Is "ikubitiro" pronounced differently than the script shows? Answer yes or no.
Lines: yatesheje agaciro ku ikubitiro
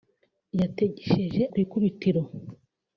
no